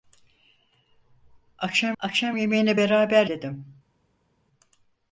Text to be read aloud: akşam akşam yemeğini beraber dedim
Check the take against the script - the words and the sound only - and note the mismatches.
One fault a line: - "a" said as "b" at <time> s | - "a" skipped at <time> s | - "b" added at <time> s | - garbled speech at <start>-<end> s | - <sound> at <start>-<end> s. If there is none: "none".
none